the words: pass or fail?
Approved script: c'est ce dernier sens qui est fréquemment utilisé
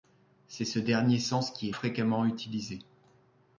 pass